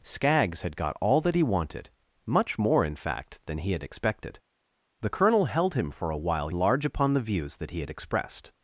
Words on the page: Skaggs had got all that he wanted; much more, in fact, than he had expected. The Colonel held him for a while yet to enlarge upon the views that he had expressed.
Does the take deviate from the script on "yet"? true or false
true